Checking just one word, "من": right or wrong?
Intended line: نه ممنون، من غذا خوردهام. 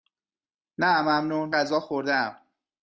wrong